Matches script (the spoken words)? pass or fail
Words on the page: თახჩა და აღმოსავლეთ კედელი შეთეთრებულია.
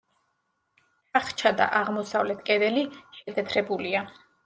pass